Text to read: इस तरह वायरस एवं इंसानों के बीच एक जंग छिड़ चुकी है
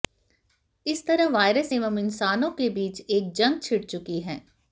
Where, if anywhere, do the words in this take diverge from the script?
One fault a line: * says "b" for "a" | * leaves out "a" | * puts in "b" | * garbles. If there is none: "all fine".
all fine